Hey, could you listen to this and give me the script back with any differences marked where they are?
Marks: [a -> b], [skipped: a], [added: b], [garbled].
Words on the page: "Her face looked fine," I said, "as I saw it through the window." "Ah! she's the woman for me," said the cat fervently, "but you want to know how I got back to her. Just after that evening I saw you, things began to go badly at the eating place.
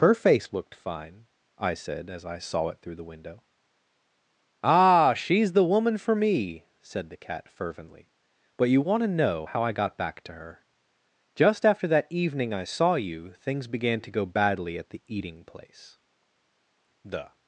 "Her face looked fine," I said, "as I saw it through the window." "Ah! she's the woman for me," said the cat fervently, "but you want to know how I got back to her. Just after that evening I saw you, things began to go badly at the eating place. [added: The]